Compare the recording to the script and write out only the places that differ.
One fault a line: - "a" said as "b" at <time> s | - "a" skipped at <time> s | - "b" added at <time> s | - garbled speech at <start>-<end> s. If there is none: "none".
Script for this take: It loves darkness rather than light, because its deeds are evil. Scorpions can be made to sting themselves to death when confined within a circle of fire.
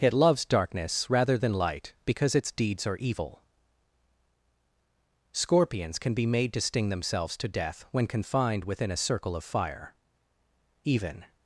- "Even" added at 10.8 s